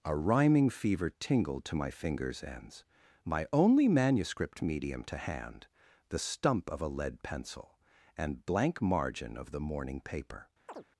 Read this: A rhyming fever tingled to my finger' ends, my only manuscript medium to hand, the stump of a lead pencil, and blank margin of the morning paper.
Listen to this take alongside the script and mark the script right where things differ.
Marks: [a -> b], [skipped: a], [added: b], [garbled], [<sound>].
A rhyming fever tingled to my [finger' -> fingers] ends, my only manuscript medium to hand, the stump of a lead pencil, and blank margin of the morning paper. [chirp]